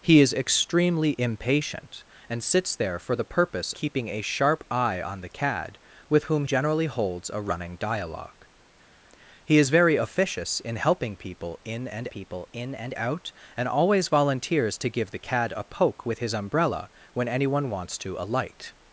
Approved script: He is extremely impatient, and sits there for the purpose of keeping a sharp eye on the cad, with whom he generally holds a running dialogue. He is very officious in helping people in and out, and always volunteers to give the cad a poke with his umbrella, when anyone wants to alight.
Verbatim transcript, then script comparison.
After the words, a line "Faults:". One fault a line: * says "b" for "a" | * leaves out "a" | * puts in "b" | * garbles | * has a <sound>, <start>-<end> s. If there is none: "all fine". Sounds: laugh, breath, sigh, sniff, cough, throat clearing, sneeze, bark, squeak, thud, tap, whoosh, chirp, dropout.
He is extremely impatient, and sits there for the purpose keeping a sharp eye on the cad, with whom generally holds a running dialogue. He is very officious in helping people in and people in and out, and always volunteers to give the cad a poke with his umbrella, when anyone wants to alight.
Faults:
* leaves out "of"
* leaves out "he"
* puts in "people in and"